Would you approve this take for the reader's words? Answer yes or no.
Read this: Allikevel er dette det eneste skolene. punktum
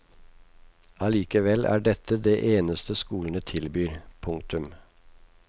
no